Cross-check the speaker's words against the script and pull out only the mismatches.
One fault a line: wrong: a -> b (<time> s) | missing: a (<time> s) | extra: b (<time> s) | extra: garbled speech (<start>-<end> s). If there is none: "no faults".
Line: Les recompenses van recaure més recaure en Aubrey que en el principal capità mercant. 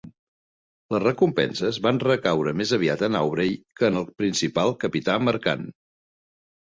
wrong: recaure -> aviat (2.8 s)